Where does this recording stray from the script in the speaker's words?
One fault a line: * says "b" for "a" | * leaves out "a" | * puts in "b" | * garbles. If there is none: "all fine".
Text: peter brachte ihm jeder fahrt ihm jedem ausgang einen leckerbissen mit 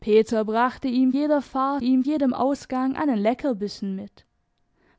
all fine